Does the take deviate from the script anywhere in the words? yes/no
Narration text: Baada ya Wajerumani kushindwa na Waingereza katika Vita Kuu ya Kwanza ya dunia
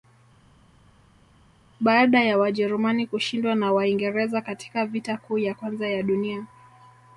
no